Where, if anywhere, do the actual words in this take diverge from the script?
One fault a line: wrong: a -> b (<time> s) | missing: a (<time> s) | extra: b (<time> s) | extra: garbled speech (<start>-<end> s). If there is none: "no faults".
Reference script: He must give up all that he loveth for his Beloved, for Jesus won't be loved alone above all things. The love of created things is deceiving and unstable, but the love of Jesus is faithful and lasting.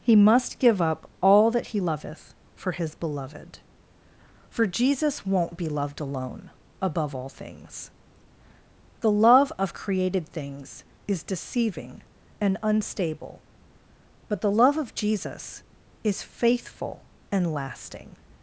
no faults